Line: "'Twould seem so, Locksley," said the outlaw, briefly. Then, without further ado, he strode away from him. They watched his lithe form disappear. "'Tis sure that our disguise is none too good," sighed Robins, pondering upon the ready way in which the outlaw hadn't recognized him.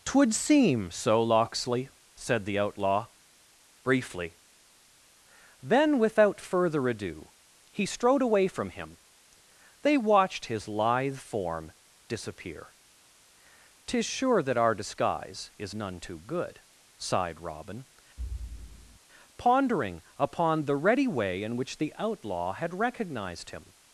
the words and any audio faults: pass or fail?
fail